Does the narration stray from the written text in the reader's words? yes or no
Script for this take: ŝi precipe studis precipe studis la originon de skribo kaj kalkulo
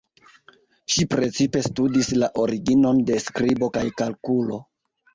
yes